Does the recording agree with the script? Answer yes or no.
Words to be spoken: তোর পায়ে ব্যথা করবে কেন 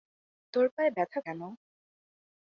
no